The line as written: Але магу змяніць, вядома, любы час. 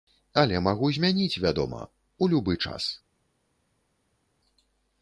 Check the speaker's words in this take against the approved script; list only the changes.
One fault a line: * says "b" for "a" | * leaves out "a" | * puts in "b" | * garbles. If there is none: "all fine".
* puts in "у"